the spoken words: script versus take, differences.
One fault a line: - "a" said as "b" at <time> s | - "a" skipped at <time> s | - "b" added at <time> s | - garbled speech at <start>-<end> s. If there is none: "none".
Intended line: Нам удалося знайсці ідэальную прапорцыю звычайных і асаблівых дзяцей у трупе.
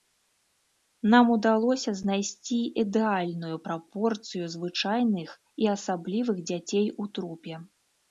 none